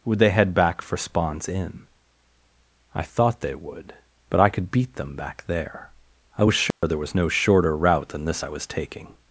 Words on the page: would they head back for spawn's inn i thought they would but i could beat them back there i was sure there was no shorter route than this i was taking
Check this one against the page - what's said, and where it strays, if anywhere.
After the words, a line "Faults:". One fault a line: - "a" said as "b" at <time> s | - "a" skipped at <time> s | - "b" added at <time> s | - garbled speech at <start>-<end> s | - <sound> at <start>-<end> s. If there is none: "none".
would they head back for spawn's inn i thought they would but i could beat them back there i was sure there was no shorter route than this i was taking
Faults:
- dropout at 6.7-6.8 s